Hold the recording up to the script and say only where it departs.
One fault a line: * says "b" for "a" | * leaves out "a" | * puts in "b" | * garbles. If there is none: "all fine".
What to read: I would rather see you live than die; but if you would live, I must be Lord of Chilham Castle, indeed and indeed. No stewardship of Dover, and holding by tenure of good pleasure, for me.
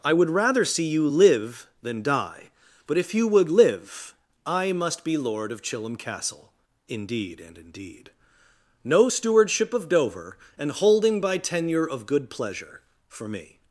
all fine